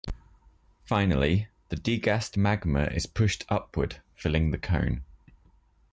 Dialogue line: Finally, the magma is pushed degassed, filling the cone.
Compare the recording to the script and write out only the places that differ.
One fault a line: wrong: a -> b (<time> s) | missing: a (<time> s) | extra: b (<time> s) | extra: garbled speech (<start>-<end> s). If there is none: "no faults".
extra: degassed (1.8 s)
wrong: degassed -> upward (3.5 s)